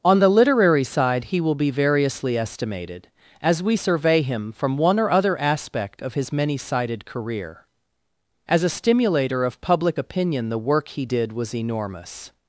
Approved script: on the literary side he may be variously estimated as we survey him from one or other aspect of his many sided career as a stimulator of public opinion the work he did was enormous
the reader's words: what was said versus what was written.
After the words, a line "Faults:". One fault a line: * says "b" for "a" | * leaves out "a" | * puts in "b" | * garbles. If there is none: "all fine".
on the literary side he will be variously estimated as we survey him from one or other aspect of his many sided career as a stimulator of public opinion the work he did was enormous
Faults:
* says "will" for "may"